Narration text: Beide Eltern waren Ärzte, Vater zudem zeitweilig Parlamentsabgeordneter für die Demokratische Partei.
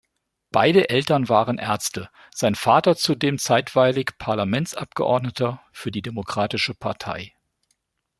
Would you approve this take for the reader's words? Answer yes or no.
no